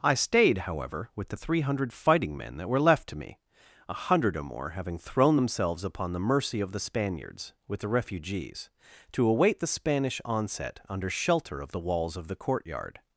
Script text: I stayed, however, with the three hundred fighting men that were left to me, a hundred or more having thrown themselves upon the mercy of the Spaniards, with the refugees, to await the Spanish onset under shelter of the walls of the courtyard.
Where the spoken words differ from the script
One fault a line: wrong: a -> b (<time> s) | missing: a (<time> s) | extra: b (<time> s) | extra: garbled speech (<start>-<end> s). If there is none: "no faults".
no faults